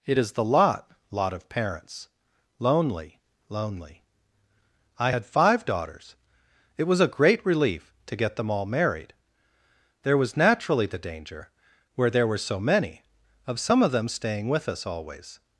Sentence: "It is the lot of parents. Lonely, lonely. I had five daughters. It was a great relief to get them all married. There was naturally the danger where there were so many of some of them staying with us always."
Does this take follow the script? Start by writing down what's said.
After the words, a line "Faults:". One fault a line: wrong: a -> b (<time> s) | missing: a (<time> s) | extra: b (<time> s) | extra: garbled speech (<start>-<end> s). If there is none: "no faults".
"It is the lot lot of parents. Lonely, lonely. I had five daughters. It was a great relief to get them all married. There was naturally the danger where there were so many of some of them staying with us always."
Faults:
extra: lot (1.1 s)